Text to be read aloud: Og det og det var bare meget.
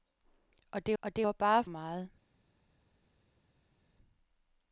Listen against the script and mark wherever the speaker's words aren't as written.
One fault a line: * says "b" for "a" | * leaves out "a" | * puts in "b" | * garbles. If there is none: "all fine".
all fine